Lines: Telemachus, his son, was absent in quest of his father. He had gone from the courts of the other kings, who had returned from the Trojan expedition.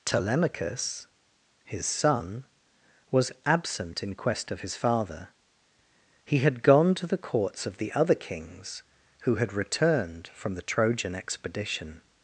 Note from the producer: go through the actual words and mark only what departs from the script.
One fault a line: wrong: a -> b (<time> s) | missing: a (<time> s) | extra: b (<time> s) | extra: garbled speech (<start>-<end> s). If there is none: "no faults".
wrong: from -> to (7.0 s)